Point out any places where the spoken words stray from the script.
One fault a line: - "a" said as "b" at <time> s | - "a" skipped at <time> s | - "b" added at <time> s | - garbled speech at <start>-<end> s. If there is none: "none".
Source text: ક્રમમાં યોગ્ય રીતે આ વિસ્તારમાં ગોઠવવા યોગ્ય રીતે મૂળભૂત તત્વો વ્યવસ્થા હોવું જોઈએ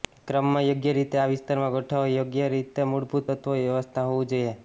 none